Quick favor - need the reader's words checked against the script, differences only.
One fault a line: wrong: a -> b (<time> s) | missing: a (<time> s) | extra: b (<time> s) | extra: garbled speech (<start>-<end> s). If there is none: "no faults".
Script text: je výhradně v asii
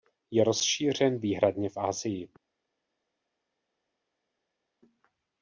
extra: rozšířen (0.4 s)